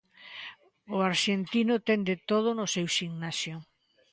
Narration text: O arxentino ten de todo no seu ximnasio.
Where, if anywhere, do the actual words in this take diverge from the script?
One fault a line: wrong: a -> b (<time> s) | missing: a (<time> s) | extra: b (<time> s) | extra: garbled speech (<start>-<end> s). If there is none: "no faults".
no faults